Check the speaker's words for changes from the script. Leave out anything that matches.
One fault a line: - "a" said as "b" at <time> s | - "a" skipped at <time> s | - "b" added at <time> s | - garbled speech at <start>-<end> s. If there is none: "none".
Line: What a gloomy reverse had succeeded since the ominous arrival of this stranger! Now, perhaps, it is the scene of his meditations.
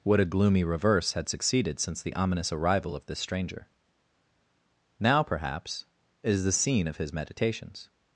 - "it" skipped at 5.8 s